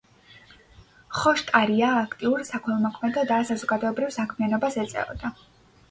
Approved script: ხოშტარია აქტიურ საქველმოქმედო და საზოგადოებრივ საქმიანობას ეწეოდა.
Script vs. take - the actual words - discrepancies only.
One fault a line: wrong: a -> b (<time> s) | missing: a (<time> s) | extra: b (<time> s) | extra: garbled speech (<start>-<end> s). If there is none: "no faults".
no faults